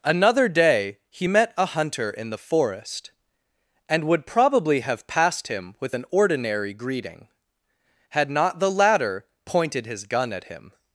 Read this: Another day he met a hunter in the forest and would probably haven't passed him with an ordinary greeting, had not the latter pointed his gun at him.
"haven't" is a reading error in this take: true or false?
true